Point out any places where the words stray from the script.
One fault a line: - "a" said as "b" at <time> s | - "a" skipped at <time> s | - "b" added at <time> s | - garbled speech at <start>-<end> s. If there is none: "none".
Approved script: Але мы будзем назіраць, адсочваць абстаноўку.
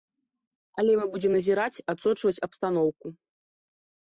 none